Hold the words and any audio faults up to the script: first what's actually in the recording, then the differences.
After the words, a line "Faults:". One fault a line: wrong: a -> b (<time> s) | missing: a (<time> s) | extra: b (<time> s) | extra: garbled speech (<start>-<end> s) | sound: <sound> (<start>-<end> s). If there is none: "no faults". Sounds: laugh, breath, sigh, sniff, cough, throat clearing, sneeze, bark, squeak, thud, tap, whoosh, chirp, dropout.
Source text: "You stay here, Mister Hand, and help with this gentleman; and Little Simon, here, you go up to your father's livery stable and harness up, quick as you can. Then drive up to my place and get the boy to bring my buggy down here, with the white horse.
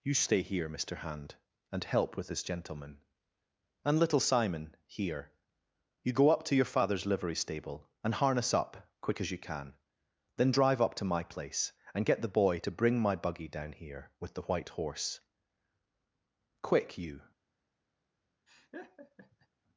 "You stay here, Mister Hand, and help with this gentleman; and Little Simon, here, you go up to your father's livery stable and harness up, quick as you can. Then drive up to my place and get the boy to bring my buggy down here, with the white horse. Quick, you
Faults:
extra: Quick you (16.6 s)
sound: laugh (18.5-19.5 s)